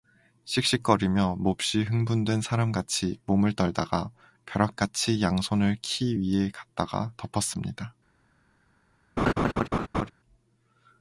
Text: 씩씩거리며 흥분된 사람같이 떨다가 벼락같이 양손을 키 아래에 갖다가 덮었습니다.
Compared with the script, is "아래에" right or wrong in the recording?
wrong